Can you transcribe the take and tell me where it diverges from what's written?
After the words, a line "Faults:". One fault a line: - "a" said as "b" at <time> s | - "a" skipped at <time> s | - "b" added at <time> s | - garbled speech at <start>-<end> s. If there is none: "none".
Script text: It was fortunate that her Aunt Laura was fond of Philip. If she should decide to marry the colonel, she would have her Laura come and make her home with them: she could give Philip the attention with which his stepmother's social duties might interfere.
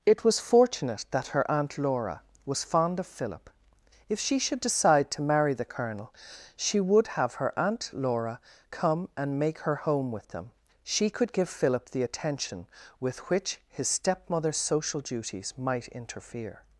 It was fortunate that her Aunt Laura was fond of Philip. If she should decide to marry the colonel, she would have her Aunt Laura come and make her home with them: she could give Philip the attention with which his stepmother's social duties might interfere.
Faults:
- "Aunt" added at 7.6 s